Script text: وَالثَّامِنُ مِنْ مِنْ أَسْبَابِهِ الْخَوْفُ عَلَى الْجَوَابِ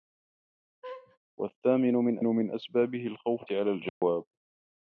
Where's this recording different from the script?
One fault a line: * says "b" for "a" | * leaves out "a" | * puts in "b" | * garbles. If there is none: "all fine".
all fine